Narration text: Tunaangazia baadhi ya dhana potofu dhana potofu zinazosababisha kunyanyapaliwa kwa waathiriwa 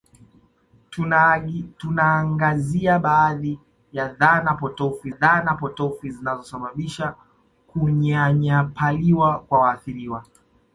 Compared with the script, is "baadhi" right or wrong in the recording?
right